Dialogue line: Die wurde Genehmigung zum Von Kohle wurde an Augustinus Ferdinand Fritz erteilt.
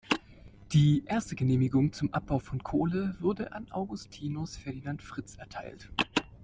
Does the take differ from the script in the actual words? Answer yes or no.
yes